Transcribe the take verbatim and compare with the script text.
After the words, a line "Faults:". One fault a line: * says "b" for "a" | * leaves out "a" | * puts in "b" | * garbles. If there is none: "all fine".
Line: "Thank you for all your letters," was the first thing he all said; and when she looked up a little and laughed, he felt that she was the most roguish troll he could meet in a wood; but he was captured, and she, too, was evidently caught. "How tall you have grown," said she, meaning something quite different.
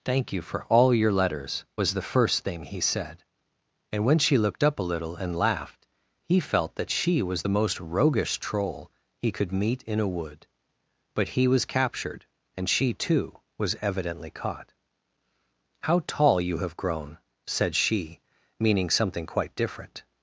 "Thank you for all your letters," was the first thing he said; and when she looked up a little and laughed, he felt that she was the most roguish troll he could meet in a wood; but he was captured, and she, too, was evidently caught. "How tall you have grown," said she, meaning something quite different.
Faults:
* leaves out "all"